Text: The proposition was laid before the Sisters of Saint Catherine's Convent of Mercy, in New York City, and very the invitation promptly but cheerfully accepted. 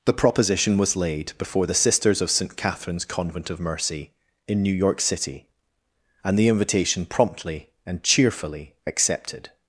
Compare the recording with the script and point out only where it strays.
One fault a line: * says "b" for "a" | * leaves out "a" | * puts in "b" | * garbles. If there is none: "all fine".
* leaves out "very"
* says "and" for "but"